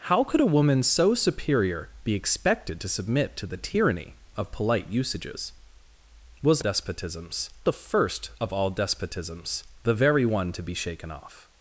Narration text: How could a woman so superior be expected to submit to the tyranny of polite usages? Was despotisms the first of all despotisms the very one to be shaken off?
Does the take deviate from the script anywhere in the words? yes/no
no